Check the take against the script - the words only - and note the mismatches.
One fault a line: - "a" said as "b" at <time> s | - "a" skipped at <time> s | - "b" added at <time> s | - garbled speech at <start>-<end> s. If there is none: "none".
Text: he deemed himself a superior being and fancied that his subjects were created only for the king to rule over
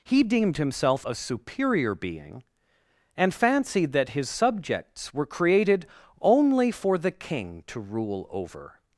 none